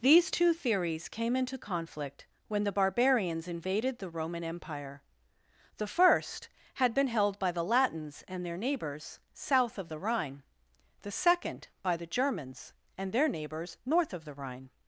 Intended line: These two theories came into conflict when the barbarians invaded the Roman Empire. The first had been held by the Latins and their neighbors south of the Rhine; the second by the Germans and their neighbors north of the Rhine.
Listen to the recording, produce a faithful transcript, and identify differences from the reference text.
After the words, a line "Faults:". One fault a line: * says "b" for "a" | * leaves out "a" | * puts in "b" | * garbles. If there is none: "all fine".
These two theories came into conflict when the barbarians invaded the Roman Empire. The first had been held by the Latins and their neighbors south of the Rhine; the second by the Germans and their neighbors north of the Rhine.
Faults:
all fine